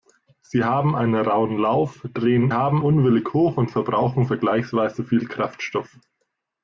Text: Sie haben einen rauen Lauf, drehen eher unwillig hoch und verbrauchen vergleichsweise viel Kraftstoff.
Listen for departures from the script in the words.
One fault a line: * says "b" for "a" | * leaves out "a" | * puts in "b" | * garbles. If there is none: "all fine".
* says "haben" for "eher"